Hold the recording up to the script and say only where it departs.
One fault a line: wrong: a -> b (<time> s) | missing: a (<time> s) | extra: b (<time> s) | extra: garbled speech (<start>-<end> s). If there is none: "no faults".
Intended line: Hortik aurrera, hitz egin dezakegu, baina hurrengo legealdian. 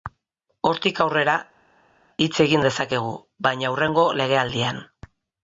no faults